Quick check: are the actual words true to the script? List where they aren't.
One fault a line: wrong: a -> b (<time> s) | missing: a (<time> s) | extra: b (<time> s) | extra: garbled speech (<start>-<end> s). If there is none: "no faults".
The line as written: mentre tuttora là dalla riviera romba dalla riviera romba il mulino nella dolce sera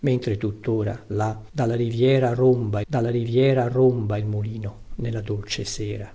no faults